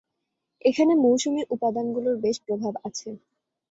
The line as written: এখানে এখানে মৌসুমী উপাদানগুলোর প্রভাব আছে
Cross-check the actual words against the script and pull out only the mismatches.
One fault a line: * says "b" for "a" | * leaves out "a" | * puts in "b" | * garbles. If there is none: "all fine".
* leaves out "এখানে"
* puts in "বেশ"